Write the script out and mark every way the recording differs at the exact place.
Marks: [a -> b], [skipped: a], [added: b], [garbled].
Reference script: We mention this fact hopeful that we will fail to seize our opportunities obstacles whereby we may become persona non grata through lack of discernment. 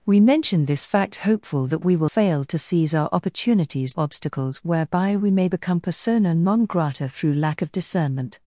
We mention this fact hopeful that we will fail to seize our opportunities obstacles whereby we may become persona non grata through lack of discernment.